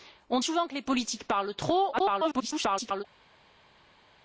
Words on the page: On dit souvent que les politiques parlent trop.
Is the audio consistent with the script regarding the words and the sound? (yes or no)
no